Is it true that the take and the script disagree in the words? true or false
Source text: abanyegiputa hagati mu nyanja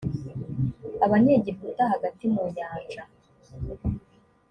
false